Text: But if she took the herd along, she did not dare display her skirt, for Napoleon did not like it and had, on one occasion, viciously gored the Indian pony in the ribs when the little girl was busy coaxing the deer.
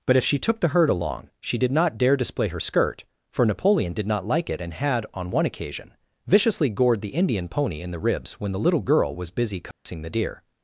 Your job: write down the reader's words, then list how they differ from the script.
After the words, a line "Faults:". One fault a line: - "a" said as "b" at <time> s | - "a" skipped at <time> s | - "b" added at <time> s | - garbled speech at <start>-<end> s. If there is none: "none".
But if she took the herd along, she did not dare display her skirt, for Napoleon did not like it and had, on one occasion, viciously gored the Indian pony in the ribs when the little girl was busy coaxing the deer.
Faults:
none